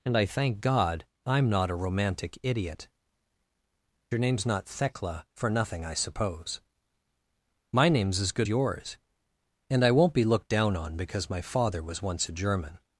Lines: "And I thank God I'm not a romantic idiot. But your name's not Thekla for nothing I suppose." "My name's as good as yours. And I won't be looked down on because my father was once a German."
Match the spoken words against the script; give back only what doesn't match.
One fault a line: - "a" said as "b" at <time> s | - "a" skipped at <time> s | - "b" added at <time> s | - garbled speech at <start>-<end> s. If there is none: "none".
- "But" skipped at 2.9 s
- "as" skipped at 8.5 s